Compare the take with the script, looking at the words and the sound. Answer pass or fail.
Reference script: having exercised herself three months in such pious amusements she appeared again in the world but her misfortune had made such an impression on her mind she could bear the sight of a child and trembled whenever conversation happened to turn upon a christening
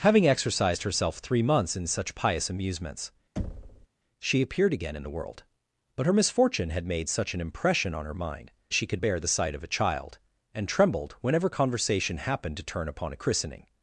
fail